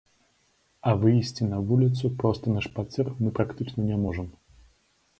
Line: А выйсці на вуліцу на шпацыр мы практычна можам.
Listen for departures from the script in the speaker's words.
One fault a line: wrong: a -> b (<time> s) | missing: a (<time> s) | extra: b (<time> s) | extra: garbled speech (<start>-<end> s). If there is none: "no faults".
extra: проста (2.2 s)
extra: не (3.9 s)